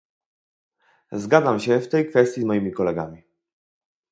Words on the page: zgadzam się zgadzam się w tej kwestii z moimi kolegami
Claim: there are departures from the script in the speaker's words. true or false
true